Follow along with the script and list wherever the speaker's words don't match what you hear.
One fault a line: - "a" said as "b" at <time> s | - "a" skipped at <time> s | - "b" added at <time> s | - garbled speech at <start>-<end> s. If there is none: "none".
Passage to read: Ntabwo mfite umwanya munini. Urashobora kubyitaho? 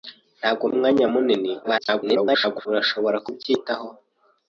- "mfite" skipped at 0.6 s
- garbled speech at 1.6-2.7 s